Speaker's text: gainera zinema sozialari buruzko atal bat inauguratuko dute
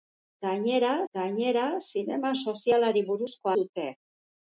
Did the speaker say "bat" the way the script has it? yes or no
no